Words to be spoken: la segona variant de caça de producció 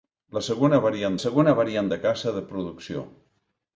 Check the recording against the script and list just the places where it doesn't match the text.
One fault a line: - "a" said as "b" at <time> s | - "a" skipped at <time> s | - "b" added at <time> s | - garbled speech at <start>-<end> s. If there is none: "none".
- "segona variant" added at 1.2 s